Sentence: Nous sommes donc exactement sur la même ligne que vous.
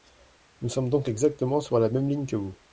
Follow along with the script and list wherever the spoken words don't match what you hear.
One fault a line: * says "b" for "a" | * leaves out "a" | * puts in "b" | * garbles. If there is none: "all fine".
all fine